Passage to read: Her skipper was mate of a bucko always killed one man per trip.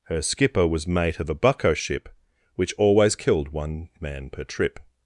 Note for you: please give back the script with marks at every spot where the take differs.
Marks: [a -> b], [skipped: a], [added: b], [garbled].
Her skipper was mate of a bucko [added: ship Which] always killed one man per trip.